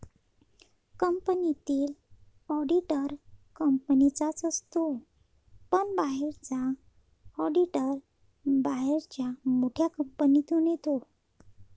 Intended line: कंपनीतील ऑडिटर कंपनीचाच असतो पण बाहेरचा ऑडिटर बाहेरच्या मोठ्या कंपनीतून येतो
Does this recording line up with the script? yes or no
yes